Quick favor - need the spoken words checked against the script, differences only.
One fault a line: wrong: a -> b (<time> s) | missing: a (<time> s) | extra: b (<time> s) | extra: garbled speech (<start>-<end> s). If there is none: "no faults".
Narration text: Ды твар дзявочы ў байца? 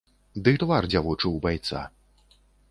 no faults